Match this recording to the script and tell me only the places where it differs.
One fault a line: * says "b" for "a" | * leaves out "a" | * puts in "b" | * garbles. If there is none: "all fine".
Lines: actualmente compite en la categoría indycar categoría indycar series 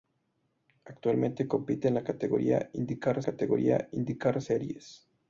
all fine